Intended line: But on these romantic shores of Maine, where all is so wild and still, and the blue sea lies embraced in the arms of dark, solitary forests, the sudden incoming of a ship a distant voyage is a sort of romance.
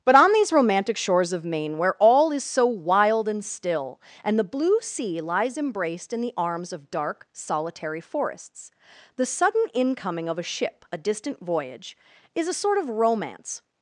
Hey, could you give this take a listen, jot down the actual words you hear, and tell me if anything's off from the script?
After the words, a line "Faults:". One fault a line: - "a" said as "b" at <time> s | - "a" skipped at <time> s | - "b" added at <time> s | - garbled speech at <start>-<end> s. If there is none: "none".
But on these romantic shores of Maine, where all is so wild and still, and the blue sea lies embraced in the arms of dark, solitary forests, the sudden incoming of a ship a distant voyage is a sort of romance.
Faults:
none